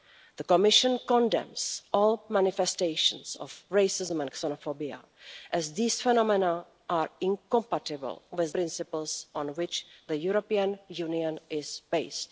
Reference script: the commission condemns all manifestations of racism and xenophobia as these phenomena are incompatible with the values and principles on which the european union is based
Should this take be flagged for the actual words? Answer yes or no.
yes